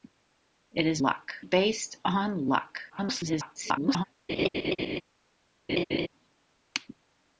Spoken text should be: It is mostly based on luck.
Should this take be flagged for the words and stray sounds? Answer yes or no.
yes